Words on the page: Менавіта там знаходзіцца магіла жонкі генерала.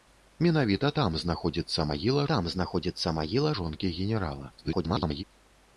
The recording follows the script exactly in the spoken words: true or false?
false